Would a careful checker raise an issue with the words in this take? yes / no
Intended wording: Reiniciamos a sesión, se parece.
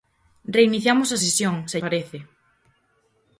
no